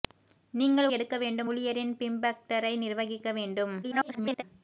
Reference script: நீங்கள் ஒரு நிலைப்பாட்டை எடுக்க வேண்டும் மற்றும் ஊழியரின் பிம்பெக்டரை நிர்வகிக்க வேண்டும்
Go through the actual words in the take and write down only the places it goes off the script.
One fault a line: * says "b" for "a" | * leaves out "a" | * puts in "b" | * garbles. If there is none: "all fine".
* leaves out "ஒரு நிலைப்பாட்டை"
* leaves out "மற்றும்"
* garbles